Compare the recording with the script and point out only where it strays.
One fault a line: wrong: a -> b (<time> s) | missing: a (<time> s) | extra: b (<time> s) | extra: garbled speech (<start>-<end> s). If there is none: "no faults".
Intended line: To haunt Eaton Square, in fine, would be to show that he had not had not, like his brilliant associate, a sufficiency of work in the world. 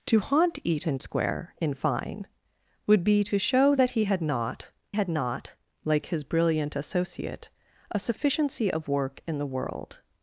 no faults